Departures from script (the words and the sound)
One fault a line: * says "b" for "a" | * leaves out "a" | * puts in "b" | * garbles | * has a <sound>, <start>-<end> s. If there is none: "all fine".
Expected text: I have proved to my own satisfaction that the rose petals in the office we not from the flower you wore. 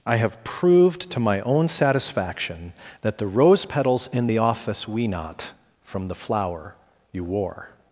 all fine